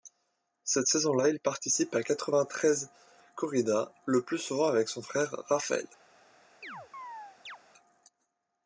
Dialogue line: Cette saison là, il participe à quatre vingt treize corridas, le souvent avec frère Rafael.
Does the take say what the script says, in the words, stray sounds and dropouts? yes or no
no